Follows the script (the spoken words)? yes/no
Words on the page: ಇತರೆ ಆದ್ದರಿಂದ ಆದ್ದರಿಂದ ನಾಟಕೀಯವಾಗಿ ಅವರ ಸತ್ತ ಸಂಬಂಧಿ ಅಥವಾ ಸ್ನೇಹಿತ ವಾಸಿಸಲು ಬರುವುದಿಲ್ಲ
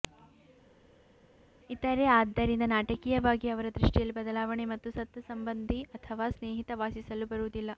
no